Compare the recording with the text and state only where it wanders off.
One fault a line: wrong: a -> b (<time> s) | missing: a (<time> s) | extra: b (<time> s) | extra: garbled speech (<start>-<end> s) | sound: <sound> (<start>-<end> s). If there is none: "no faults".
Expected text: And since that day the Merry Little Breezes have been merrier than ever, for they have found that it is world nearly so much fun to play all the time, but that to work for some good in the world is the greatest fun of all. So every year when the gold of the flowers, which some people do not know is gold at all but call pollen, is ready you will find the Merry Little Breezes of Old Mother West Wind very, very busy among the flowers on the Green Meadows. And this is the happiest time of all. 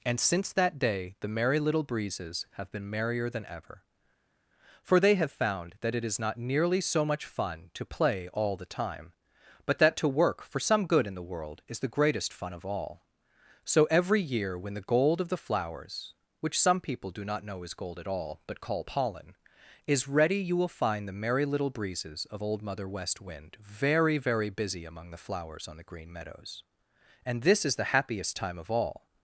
wrong: world -> not (6.2 s)